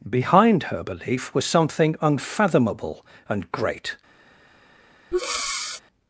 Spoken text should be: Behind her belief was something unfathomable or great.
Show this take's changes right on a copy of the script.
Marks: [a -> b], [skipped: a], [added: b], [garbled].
Behind her belief was something unfathomable [or -> and] great.